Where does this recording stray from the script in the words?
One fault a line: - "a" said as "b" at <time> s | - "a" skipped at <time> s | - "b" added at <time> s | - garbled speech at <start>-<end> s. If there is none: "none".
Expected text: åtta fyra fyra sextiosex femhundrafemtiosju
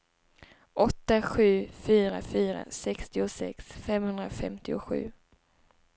- "sju" added at 1.2 s